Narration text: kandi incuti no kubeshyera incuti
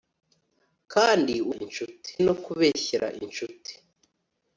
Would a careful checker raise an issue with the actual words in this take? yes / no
no